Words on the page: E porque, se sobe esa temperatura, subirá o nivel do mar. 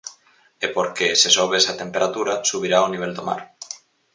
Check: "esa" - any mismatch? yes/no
no